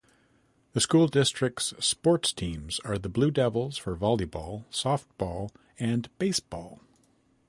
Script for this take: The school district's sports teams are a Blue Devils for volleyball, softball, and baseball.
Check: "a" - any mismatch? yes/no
yes